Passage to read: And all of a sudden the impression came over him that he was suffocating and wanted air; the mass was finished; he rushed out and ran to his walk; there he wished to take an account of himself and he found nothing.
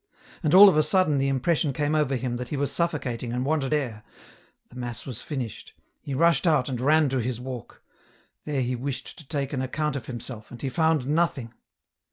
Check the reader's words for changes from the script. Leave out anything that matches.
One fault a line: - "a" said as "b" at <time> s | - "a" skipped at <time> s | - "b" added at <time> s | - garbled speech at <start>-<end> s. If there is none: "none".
none